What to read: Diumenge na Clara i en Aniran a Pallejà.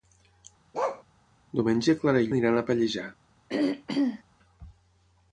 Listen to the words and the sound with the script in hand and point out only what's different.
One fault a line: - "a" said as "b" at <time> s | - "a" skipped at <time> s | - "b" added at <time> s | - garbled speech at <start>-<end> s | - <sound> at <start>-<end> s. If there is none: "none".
- bark at 0.7-1.0 s
- throat clearing at 3.5-4.2 s